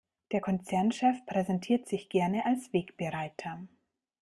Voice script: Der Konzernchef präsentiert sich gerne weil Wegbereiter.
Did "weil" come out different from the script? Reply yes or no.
yes